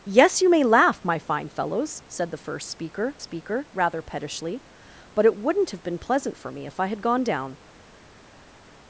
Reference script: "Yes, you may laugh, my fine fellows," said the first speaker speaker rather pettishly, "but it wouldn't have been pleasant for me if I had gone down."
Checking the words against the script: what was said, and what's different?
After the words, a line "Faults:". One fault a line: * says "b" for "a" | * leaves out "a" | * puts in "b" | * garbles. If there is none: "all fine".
"Yes, you may laugh, my fine fellows," said the first speaker speaker rather pettishly, "but it wouldn't have been pleasant for me if I had gone down."
Faults:
all fine